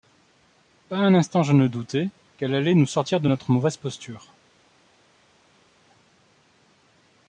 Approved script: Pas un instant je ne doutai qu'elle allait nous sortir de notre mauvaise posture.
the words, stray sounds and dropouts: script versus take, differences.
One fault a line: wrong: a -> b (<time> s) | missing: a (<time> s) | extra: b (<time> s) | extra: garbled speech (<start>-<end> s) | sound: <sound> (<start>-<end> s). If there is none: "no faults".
no faults